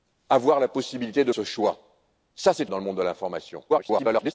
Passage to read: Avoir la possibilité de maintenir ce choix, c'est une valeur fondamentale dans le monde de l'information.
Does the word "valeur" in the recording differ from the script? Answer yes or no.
yes